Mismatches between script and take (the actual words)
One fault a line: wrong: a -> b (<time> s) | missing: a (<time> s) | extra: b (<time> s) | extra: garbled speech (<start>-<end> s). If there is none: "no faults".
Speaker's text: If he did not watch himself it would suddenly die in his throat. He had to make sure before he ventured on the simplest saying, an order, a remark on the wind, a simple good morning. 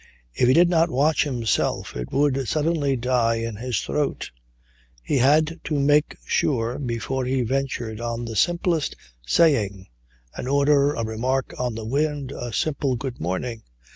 no faults